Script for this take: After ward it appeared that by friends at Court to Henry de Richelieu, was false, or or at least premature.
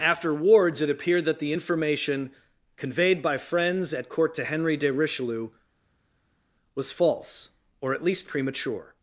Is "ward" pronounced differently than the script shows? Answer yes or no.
yes